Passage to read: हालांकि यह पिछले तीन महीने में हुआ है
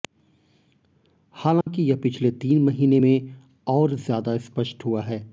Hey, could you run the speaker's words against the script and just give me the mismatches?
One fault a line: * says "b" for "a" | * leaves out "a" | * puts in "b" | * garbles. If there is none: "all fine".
* puts in "और ज्यादा स्पष्ट"